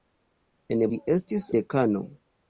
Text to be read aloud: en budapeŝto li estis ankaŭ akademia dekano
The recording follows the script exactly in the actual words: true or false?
false